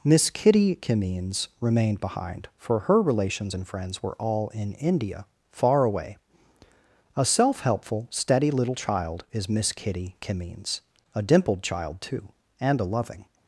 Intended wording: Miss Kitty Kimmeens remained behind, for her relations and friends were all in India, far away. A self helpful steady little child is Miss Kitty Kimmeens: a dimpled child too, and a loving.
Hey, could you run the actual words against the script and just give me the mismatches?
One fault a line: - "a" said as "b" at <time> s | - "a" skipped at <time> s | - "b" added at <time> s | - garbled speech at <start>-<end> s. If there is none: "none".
none